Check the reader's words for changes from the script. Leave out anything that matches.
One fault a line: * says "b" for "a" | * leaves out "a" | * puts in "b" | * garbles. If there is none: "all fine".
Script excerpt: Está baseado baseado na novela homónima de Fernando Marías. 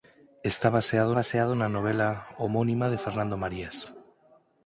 all fine